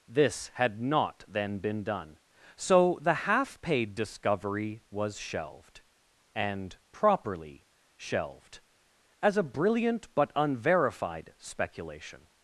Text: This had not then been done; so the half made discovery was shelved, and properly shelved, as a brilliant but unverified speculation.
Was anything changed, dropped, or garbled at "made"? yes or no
yes